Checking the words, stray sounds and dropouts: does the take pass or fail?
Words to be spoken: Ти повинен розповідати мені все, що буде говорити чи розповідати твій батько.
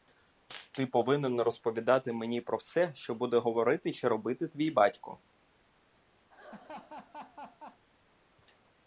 fail